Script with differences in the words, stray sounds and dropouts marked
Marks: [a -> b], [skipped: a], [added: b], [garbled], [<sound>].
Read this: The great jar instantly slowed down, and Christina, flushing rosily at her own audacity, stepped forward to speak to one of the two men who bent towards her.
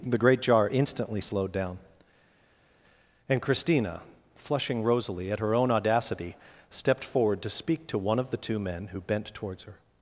The great jar instantly slowed down, and Christina, flushing rosily at her own audacity, stepped forward to speak to one of the two men who bent towards her.